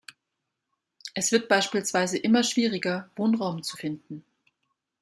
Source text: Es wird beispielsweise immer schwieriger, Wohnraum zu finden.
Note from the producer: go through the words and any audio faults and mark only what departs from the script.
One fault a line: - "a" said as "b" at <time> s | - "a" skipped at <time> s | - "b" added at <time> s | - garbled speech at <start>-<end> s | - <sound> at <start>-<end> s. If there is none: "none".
none